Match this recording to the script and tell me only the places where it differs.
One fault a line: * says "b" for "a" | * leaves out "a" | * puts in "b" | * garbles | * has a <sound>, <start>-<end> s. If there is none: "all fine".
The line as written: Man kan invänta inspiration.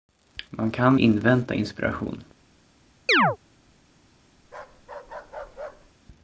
* has a chirp, 3.1-3.4 s
* has a bark, 4.4-5.9 s